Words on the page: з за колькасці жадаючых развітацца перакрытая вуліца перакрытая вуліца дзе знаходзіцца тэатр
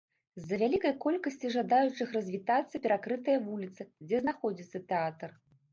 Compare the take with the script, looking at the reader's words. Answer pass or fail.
fail